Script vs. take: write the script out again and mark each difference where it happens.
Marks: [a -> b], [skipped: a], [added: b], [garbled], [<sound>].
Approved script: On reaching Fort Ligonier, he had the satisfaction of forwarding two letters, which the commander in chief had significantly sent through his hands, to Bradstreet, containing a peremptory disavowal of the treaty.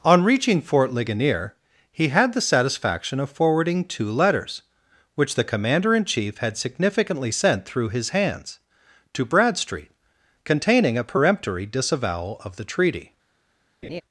On reaching Fort Ligonier, he had the satisfaction of forwarding two letters, which the commander in chief had significantly sent through his hands, to Bradstreet, containing a peremptory disavowal of the treaty. [laugh]